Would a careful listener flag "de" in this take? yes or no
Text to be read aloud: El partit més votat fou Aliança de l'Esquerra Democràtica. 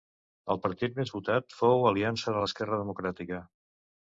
no